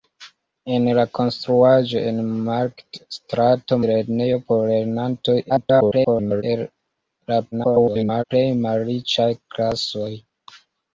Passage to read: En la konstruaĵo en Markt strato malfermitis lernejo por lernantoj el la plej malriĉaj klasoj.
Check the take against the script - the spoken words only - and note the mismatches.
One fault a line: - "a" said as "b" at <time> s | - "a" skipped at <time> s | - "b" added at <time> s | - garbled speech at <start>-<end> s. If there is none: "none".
- "malfermitis" skipped at 3.8 s
- garbled speech at 5.5-6.4 s
- garbled speech at 7.5-8.2 s